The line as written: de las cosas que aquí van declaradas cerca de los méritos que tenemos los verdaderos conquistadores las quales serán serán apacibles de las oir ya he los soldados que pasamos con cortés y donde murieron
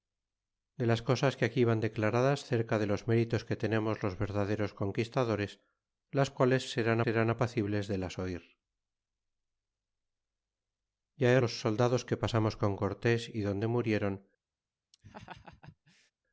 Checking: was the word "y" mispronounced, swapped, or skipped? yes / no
no